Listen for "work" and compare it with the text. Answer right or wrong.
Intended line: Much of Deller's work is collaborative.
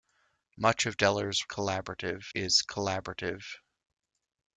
wrong